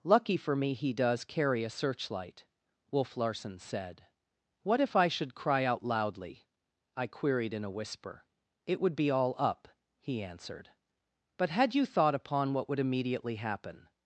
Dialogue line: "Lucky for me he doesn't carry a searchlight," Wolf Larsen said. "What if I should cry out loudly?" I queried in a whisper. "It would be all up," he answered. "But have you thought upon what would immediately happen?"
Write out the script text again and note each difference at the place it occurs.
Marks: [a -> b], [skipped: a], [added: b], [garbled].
"Lucky for me he [doesn't -> does] carry a searchlight," Wolf Larsen said. "What if I should cry out loudly?" I queried in a whisper. "It would be all up," he answered. "But [have -> had] you thought upon what would immediately happen?"